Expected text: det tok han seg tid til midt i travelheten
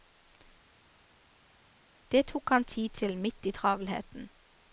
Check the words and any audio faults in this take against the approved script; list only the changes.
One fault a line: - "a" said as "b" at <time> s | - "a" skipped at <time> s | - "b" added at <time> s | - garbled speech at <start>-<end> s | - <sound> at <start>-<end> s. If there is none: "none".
- "seg" skipped at 2.6 s